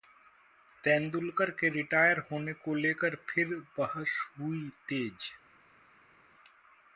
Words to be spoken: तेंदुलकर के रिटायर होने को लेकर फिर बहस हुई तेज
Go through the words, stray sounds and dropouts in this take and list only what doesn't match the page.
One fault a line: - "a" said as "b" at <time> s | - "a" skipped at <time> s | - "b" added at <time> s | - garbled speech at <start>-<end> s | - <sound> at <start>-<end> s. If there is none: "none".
none